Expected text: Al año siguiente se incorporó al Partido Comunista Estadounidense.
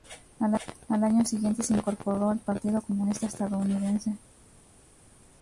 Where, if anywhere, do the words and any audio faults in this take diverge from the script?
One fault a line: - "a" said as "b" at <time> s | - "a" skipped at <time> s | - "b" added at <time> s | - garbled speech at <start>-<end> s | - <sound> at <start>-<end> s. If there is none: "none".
none